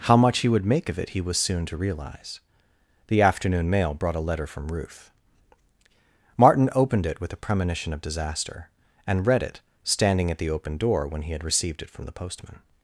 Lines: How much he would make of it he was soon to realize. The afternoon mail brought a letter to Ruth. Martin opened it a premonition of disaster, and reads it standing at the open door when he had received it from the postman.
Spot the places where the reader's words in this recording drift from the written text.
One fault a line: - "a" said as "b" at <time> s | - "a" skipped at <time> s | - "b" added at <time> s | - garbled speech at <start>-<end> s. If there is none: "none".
- "to" said as "from" at 4.5 s
- "with" added at 7.2 s
- "reads" said as "read" at 9.3 s